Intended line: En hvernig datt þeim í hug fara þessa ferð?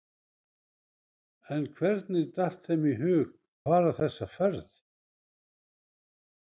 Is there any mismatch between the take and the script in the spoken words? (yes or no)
no